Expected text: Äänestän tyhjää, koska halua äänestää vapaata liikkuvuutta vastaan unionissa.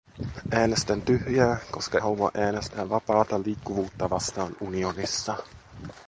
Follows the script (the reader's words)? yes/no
yes